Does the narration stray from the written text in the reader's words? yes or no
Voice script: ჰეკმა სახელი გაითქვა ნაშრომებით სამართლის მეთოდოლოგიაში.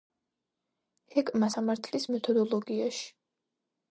yes